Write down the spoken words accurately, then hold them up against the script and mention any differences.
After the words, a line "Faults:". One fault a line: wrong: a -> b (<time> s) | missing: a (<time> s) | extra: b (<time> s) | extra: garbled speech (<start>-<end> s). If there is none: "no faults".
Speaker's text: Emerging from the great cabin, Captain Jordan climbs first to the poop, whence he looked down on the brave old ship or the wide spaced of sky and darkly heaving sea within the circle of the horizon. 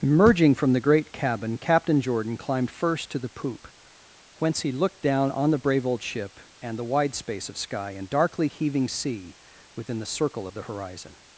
Emerging from the great cabin, Captain Jordan climbed first to the poop, whence he looked down on the brave old ship and the wide space of sky and darkly heaving sea within the circle of the horizon.
Faults:
wrong: climbs -> climbed (2.4 s)
wrong: or -> and (6.6 s)
wrong: spaced -> space (7.1 s)